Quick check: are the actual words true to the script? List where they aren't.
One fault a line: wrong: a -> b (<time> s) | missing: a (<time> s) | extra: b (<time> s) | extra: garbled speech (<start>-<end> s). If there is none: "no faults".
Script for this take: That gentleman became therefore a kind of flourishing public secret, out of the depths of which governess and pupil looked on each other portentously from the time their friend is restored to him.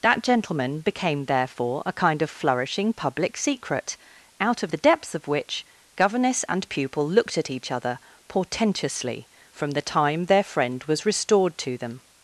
wrong: on -> at (7.4 s)
wrong: is -> was (10.8 s)
wrong: him -> them (11.8 s)